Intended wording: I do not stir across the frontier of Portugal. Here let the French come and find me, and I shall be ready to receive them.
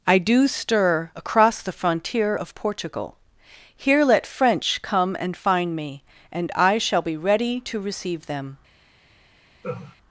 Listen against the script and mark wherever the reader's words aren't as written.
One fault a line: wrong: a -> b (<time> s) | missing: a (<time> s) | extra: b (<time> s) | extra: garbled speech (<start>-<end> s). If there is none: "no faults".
missing: not (0.5 s)
missing: the (4.3 s)